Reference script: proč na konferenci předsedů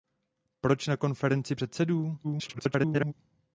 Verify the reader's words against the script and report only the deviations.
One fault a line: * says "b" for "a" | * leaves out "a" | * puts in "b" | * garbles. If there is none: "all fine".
* garbles